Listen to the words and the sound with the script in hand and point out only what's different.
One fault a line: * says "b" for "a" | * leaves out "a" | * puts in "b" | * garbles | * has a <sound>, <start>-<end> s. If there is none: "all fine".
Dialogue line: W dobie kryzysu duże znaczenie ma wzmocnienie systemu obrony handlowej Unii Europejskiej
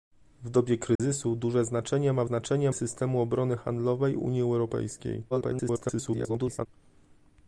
* has a dropout, 1.0-1.0 s
* says "znaczenie" for "wzmocnienie"
* garbles